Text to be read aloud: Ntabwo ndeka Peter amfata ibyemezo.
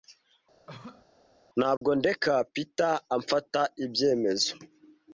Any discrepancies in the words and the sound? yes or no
yes